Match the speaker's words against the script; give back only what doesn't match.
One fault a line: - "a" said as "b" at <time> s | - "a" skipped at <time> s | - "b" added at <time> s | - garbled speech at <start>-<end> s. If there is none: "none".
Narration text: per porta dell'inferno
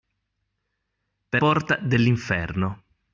none